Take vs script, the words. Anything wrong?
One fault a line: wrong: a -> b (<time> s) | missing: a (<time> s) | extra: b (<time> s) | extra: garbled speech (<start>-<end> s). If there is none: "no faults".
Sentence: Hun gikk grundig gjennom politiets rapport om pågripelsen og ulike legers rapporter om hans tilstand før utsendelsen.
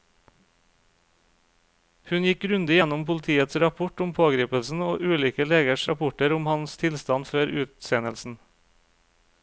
no faults